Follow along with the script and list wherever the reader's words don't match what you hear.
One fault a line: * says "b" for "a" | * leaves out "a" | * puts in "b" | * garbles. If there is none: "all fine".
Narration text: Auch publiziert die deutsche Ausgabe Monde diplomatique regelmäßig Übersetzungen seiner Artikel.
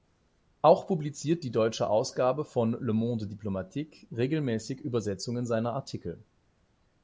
* puts in "von Le"